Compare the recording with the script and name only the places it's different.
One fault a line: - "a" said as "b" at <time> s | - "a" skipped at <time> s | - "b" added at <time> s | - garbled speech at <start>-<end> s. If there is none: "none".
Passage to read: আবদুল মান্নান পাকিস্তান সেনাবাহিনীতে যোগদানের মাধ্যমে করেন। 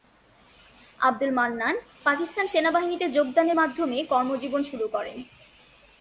- "কর্মজীবন শুরু" added at 4.0 s